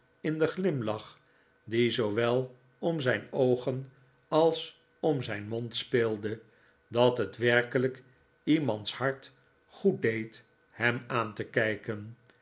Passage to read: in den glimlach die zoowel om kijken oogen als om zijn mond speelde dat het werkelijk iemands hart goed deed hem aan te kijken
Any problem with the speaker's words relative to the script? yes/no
yes